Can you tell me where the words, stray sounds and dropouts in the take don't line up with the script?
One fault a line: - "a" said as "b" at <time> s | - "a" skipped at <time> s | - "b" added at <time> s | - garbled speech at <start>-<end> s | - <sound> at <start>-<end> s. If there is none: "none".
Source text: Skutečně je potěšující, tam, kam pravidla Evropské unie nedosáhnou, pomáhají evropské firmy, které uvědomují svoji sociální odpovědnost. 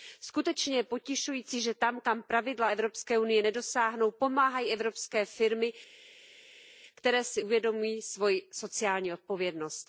- "že" added at 1.6 s
- "si" added at 7.2 s